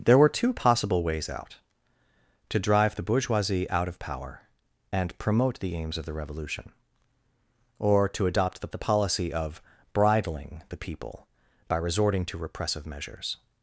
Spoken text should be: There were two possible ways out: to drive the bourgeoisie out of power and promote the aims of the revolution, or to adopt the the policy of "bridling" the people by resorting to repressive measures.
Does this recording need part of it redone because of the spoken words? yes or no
no